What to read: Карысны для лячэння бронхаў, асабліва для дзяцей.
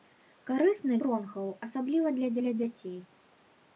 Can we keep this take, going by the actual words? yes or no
no